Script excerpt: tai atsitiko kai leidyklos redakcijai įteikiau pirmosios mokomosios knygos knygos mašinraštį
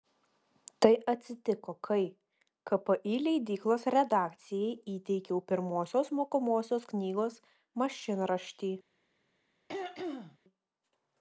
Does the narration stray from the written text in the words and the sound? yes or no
yes